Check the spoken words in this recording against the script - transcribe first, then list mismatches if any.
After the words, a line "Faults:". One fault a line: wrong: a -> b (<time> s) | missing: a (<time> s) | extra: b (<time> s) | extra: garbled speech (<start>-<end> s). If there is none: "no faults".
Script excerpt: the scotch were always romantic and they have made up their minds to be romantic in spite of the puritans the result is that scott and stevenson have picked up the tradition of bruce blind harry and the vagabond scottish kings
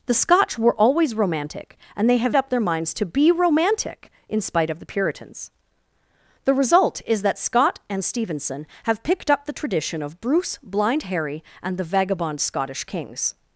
the scotch were always romantic and they have up their minds to be romantic in spite of the puritans the result is that scott and stevenson have picked up the tradition of bruce blind harry and the vagabond scottish kings
Faults:
missing: made (2.4 s)